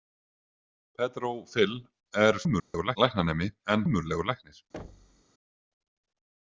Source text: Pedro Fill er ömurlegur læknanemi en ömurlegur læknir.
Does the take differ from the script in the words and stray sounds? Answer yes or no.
yes